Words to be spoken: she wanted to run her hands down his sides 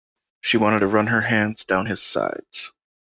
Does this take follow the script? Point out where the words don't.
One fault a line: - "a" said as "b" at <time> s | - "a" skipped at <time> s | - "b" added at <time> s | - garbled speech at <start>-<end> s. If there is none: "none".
none